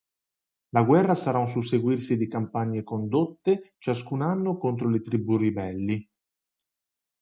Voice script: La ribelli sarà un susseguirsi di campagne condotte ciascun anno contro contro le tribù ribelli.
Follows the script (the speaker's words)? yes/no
no